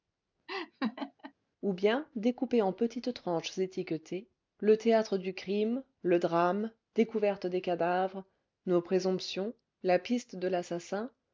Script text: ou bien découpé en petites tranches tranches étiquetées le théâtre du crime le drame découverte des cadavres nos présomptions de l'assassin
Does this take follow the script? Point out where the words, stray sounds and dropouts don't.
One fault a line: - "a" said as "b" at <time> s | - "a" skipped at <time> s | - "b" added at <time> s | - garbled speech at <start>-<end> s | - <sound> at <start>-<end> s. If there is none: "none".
- laugh at 0.5-1.3 s
- "tranches" skipped at 3.6 s
- "la piste" added at 9.8 s